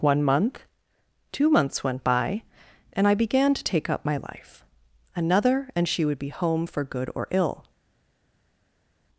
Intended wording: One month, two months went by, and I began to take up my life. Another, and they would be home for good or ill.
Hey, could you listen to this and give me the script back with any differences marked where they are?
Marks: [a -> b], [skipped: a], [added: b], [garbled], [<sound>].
One month, two months went by, and I began to take up my life. Another, and [they -> she] would be home for good or ill.